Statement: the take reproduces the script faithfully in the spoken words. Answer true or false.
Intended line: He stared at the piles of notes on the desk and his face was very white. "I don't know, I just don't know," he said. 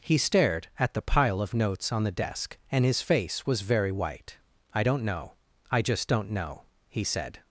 false